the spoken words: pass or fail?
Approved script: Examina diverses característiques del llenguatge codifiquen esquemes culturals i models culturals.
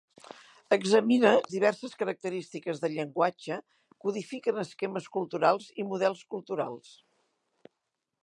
pass